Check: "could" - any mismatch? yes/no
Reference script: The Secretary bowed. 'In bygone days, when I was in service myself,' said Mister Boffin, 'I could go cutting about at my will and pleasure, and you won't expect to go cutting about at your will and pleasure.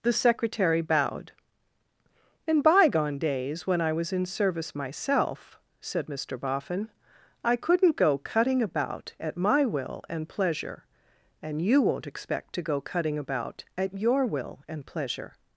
yes